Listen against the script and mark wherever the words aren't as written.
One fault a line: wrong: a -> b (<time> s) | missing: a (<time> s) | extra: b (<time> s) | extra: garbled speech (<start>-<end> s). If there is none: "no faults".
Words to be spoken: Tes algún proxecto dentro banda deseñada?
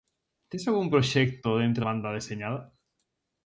no faults